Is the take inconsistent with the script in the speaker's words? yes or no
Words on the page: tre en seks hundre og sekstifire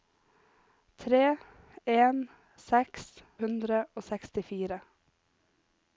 no